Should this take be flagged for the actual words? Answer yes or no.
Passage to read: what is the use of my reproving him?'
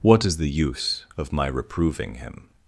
no